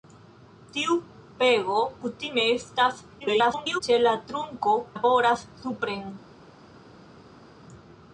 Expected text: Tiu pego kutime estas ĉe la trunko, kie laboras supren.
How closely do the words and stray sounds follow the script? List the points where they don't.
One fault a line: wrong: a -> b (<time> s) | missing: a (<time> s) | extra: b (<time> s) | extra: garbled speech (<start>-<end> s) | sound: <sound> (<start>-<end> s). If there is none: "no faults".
extra: garbled speech (3.2-3.8 s)
missing: kie (4.8 s)